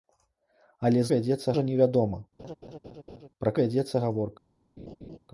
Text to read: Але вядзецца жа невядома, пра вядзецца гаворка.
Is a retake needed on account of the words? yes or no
no